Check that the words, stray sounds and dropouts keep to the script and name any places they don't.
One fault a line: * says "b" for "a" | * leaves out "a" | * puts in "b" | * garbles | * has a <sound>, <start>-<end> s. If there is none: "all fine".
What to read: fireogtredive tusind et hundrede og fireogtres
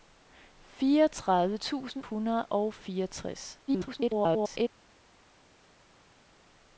* leaves out "et"
* garbles